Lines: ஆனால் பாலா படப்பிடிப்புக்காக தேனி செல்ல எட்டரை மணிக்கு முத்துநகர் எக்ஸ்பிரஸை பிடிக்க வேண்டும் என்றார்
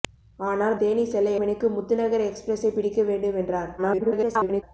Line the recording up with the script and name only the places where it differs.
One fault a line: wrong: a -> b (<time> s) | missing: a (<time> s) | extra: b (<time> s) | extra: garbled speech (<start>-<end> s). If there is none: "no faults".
missing: பாலா படப்பிடிப்புக்காக (0.8 s)
missing: எட்டரை (1.4 s)
extra: garbled speech (3.8-4.6 s)